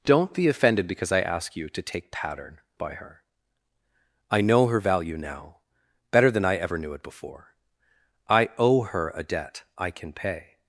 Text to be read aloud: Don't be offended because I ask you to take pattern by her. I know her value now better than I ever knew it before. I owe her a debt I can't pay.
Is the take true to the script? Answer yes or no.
no